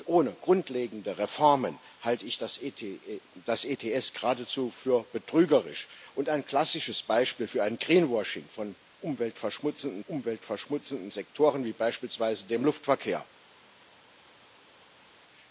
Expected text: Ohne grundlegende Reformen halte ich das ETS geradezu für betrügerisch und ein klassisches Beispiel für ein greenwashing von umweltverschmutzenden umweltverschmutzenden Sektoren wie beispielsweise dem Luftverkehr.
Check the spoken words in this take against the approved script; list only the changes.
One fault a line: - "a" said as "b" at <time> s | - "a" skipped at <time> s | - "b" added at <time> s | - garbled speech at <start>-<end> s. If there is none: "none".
none